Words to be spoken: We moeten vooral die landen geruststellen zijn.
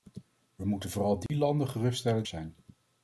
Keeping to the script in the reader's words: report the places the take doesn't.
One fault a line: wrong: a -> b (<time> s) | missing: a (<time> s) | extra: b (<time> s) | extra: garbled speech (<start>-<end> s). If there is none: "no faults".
no faults